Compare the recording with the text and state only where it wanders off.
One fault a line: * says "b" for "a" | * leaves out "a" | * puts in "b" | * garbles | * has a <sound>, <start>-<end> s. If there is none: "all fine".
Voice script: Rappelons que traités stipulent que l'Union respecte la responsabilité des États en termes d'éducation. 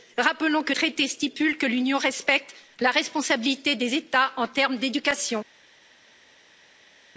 all fine